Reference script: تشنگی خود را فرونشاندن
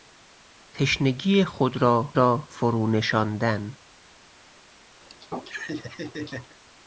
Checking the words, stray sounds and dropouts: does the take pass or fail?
fail